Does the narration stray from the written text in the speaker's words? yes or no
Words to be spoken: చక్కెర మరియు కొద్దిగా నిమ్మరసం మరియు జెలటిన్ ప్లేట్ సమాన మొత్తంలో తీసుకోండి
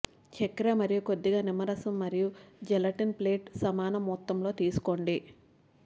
no